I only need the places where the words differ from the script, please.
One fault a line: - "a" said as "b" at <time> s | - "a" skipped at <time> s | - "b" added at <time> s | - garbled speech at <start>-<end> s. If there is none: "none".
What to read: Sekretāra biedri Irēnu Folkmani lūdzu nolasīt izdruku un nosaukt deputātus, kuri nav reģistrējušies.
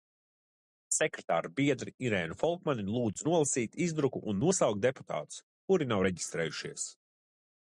none